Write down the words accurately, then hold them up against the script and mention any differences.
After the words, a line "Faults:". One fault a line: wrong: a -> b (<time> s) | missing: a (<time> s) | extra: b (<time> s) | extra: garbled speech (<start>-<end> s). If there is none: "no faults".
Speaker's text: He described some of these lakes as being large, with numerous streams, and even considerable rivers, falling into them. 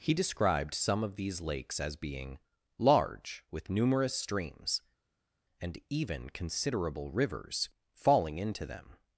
He described some of these lakes as being large, with numerous streams, and even considerable rivers, falling into them.
Faults:
no faults